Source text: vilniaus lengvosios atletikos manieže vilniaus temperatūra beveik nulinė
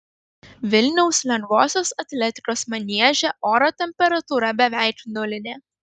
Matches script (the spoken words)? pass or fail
fail